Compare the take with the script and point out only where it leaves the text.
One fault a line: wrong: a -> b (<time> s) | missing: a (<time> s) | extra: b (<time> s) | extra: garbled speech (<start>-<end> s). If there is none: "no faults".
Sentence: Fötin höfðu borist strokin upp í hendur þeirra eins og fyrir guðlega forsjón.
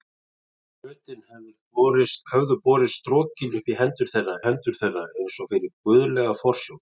extra: hendur þeirra (4.5 s)